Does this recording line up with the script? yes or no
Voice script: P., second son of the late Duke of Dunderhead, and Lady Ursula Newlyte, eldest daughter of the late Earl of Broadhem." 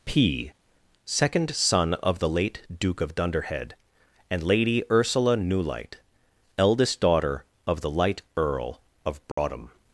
no